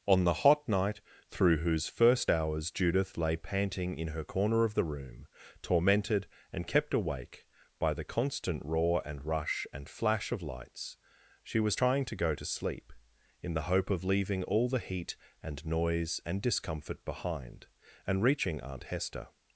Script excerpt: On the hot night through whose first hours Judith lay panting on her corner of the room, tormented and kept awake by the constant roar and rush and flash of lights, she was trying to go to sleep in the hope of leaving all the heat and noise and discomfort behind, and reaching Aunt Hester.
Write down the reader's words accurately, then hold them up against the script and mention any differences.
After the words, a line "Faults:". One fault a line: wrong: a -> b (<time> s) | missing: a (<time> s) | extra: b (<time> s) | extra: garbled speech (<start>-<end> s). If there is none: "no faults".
On the hot night through whose first hours Judith lay panting in her corner of the room, tormented and kept awake by the constant roar and rush and flash of lights, she was trying to go to sleep in the hope of leaving all the heat and noise and discomfort behind, and reaching Aunt Hester.
Faults:
wrong: on -> in (4.0 s)